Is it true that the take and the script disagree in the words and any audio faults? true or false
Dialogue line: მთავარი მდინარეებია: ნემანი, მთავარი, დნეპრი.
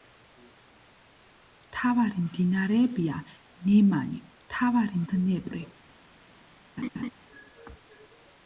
true